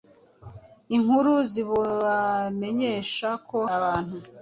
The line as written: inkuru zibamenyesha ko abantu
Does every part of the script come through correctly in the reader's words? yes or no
yes